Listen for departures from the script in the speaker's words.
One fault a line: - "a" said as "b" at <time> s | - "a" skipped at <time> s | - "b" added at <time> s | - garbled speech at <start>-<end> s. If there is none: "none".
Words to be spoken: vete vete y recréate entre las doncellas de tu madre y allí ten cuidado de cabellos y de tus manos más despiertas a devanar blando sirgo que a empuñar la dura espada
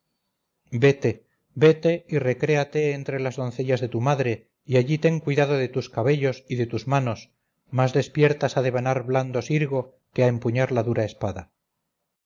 - "tus" added at 5.8 s